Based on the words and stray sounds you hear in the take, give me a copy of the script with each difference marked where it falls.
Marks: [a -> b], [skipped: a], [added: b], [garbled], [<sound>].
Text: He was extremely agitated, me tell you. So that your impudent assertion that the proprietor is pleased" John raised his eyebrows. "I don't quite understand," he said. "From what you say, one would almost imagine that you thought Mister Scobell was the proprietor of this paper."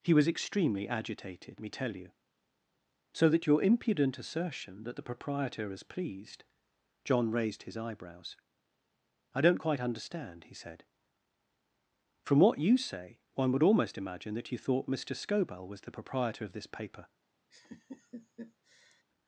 He was extremely agitated, me tell you. So that your impudent assertion that the proprietor is pleased" John raised his eyebrows. "I don't quite understand," he said. "From what you say, one would almost imagine that you thought Mister Scobell was the proprietor of this paper." [laugh]